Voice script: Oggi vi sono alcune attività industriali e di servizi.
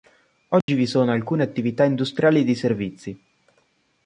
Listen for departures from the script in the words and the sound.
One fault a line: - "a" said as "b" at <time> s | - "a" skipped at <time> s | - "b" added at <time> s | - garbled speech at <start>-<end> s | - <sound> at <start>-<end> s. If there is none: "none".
- dropout at 0.6-0.7 s